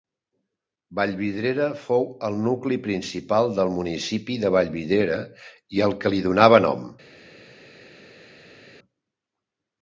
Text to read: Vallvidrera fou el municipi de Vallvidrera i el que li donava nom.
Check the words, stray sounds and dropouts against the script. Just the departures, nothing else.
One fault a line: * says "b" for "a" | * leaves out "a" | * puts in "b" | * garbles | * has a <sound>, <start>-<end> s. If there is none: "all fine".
* puts in "nucli principal del"